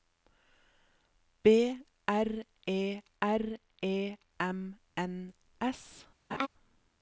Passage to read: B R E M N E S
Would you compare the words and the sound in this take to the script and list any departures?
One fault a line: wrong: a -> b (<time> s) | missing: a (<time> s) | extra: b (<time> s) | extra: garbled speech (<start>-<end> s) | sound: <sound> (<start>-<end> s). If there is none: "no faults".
extra: R E (3.2 s)
missing: E (5.3 s)
sound: laugh (6.3-6.5 s)